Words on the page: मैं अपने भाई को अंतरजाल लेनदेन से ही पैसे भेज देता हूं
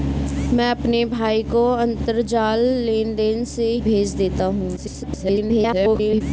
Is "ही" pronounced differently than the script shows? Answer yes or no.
yes